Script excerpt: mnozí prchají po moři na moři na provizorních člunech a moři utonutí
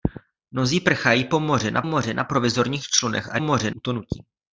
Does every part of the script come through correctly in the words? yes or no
yes